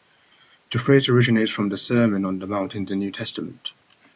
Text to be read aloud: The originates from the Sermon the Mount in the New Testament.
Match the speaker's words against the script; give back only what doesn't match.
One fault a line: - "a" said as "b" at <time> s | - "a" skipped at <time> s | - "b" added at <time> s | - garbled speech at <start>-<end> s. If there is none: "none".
- "phrase" added at 0.8 s
- "on" added at 2.2 s